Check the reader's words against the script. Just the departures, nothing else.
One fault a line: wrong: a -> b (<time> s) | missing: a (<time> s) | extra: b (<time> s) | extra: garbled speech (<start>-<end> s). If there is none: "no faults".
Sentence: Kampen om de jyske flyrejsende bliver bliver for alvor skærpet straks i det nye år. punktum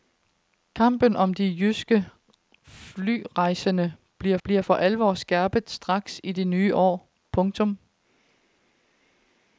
no faults